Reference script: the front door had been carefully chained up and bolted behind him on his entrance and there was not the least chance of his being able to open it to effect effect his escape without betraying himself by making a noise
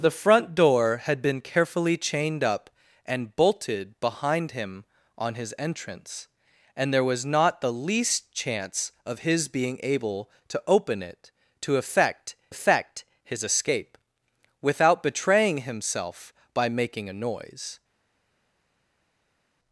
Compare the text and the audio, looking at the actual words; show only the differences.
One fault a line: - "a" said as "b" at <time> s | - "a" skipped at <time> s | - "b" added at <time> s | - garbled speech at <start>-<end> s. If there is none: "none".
none